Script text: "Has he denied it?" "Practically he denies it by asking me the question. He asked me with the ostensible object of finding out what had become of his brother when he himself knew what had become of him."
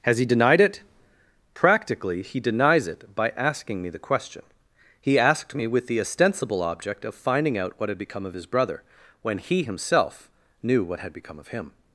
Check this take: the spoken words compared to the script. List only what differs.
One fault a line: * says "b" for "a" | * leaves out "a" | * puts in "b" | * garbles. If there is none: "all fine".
all fine